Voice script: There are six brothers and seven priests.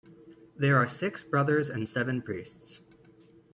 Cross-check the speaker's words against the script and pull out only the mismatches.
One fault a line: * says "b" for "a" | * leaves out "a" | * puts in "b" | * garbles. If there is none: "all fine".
all fine